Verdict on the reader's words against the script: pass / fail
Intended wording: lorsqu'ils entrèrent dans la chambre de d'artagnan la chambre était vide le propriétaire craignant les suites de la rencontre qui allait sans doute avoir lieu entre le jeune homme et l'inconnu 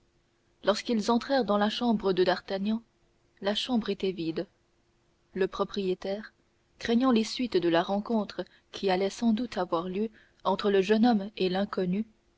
pass